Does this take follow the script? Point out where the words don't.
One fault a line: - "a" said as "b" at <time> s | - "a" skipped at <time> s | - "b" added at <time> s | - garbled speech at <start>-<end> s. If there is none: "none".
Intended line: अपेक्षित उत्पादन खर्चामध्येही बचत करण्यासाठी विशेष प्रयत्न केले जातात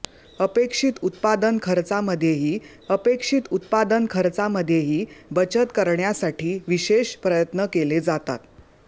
- "अपेक्षित उत्पादन खर्चामध्येही" added at 2.9 s